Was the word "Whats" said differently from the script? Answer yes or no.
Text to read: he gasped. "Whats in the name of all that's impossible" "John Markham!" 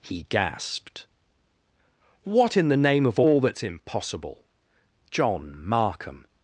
yes